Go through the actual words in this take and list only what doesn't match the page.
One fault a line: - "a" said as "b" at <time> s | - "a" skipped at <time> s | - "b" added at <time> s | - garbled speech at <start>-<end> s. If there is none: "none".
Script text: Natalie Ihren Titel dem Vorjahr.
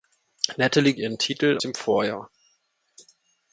none